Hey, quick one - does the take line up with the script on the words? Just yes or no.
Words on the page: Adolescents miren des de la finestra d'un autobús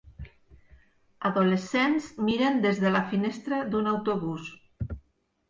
yes